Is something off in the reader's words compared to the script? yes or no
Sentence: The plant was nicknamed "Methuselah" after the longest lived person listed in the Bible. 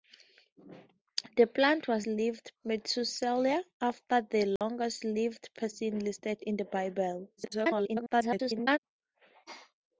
yes